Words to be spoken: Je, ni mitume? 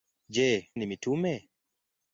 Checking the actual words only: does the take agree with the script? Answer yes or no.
yes